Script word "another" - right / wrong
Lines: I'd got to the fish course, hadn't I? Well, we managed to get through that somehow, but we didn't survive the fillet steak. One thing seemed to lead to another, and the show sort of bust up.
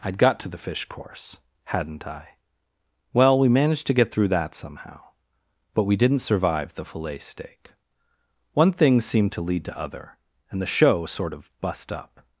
wrong